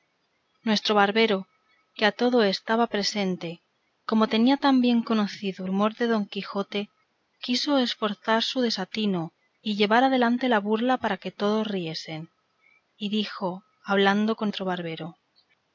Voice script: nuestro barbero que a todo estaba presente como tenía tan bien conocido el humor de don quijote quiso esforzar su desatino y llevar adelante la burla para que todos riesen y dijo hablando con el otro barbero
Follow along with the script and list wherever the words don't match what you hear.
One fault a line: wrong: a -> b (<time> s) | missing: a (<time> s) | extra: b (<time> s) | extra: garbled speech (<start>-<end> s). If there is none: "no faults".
missing: el (5.7 s)
missing: el (14.5 s)